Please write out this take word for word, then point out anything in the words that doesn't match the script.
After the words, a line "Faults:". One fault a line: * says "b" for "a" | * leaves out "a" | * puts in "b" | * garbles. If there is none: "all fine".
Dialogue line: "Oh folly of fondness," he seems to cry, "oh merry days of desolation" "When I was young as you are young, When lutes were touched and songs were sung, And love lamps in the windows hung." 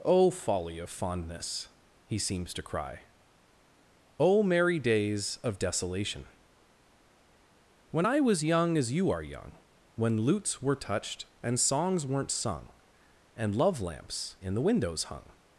"Oh folly of fondness," he seems to cry, "oh merry days of desolation" "When I was young as you are young, When lutes were touched and songs weren't sung, And love lamps in the windows hung."
Faults:
* says "weren't" for "were"